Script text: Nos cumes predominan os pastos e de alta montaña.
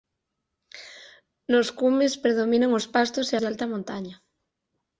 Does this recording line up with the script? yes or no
yes